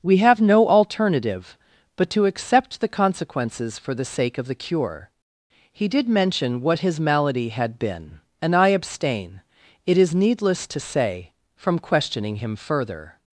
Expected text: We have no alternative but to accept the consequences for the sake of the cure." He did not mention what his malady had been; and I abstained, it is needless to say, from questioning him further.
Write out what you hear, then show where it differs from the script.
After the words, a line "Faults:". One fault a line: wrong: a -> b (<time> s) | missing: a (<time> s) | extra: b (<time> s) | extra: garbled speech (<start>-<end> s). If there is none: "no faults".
We have no alternative but to accept the consequences for the sake of the cure." He did mention what his malady had been; and I abstain, it is needless to say, from questioning him further.
Faults:
missing: not (6.1 s)
wrong: abstained -> abstain (8.7 s)